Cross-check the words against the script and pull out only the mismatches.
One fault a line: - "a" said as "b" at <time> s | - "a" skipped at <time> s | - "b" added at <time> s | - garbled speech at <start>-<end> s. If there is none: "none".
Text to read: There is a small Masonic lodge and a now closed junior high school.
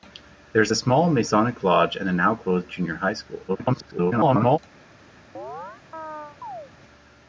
- garbled speech at 3.5-4.6 s